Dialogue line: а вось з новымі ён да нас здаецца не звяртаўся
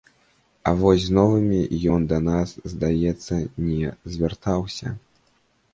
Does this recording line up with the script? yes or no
yes